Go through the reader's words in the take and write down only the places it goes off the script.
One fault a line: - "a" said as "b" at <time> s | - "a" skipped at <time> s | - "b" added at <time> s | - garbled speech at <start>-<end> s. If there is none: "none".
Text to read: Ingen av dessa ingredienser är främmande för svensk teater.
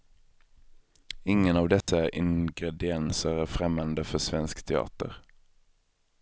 none